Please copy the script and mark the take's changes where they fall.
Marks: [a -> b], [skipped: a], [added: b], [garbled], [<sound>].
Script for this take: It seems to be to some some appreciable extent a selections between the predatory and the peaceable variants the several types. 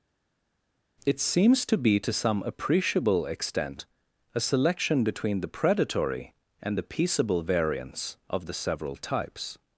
It seems to be to some [skipped: some] appreciable extent a [selections -> selection] between the predatory and the peaceable variants [added: of] the several types.